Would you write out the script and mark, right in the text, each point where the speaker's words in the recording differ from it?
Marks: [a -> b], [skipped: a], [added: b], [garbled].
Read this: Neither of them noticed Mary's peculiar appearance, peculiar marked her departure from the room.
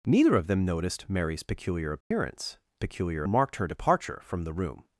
Neither of them noticed Mary's peculiar appearance, peculiar marked her departure from the room.